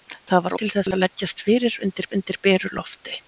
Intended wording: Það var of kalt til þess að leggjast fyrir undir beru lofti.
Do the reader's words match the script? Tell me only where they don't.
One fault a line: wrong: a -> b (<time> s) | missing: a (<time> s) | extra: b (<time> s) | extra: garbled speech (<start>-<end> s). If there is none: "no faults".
missing: of kalt (0.5 s)
extra: undir (2.2 s)